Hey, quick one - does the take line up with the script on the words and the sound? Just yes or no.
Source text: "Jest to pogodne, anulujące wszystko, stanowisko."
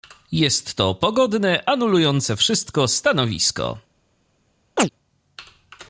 no